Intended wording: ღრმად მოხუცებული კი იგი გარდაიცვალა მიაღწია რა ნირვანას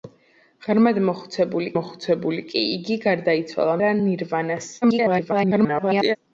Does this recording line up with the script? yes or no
no